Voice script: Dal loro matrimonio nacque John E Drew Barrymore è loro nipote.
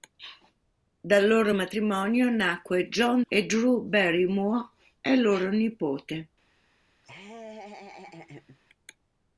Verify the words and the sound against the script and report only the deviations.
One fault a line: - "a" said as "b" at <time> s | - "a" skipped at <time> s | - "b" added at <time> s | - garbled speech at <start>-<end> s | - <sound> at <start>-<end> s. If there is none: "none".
- laugh at 7.0-8.6 s